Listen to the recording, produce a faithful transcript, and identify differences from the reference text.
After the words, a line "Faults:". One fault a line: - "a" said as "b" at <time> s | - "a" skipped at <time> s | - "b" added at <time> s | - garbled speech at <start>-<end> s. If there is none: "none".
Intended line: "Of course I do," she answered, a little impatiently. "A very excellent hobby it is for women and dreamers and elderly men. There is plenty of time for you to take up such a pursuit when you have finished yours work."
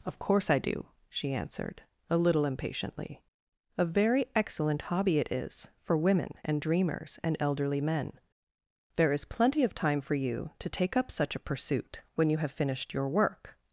"Of course I do," she answered, a little impatiently. "A very excellent hobby it is for women and dreamers and elderly men. There is plenty of time for you to take up such a pursuit when you have finished your work."
Faults:
- "yours" said as "your" at 12.9 s